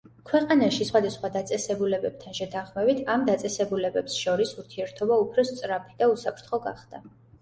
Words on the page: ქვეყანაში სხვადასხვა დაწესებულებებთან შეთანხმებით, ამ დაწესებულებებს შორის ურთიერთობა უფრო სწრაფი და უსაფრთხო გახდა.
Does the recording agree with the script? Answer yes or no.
yes